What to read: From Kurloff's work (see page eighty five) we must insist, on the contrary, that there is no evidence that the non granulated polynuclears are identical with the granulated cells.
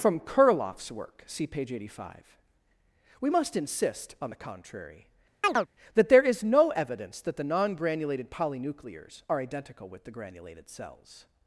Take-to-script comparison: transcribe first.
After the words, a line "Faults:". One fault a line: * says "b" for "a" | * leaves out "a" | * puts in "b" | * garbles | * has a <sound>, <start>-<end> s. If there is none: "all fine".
From Kurloff's work (see page eighty five) we must insist, on the contrary, that there is no evidence that the non granulated polynuclears are identical with the granulated cells.
Faults:
* has a chirp, 5.4-5.7 s